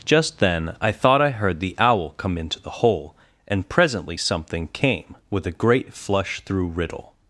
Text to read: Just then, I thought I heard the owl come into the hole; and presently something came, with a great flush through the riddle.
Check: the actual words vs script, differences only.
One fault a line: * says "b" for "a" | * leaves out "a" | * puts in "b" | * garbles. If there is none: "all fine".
* leaves out "the"